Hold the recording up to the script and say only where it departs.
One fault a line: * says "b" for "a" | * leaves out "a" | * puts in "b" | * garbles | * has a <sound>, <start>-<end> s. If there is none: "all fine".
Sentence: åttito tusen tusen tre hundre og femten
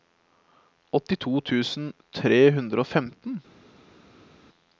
* leaves out "tusen"